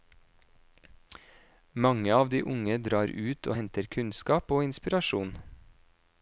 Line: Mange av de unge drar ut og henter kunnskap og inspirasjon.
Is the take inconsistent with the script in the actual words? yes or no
no